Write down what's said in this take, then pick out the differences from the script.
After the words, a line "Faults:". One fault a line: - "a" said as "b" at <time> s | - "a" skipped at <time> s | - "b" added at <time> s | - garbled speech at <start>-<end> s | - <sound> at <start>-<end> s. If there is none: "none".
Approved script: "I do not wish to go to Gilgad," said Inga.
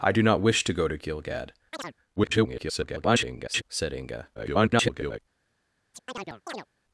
"I do not wish to go to Gilgad," [garbled] said Inga. [garbled]
Faults:
- chirp at 1.7-1.9 s
- garbled speech at 2.2-3.6 s
- garbled speech at 4.3-5.2 s
- chirp at 5.9-6.7 s